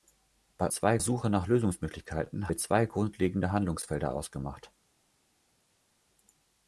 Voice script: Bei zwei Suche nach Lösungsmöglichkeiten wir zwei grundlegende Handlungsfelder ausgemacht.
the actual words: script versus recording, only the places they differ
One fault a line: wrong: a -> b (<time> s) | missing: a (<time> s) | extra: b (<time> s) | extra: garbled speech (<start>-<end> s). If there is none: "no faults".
no faults